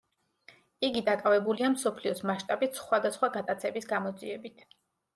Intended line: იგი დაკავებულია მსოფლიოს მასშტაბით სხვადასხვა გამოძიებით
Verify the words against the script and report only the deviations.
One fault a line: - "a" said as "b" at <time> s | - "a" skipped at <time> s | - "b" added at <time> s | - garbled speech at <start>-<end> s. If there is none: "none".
- "გატაცების" added at 3.4 s